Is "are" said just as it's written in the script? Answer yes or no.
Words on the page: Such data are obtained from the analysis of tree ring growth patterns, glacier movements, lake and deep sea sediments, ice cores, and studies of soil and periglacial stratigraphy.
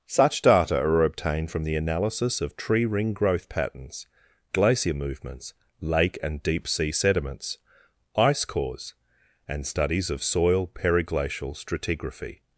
yes